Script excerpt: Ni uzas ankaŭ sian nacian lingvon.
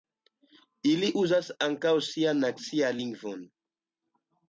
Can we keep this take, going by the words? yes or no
no